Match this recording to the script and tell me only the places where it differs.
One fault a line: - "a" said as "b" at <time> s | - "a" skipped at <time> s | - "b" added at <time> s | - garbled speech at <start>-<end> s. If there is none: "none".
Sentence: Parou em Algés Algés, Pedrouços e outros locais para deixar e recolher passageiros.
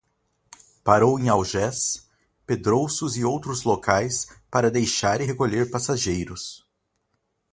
- "Algés" skipped at 2.1 s